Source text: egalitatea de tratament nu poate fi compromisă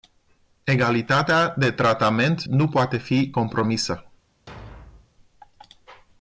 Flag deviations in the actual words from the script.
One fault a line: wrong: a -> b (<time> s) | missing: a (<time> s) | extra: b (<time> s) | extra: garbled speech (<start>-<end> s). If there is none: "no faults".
no faults